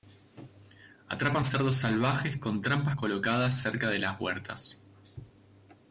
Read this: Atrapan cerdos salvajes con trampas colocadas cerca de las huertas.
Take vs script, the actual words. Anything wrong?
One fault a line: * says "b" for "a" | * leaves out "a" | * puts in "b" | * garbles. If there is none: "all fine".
all fine